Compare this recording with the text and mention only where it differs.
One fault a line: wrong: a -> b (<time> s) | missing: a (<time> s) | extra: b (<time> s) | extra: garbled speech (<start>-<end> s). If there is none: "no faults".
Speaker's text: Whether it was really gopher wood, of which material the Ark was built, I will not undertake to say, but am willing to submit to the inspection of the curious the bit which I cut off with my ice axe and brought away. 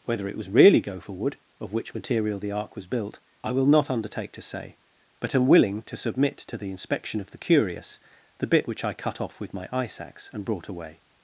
no faults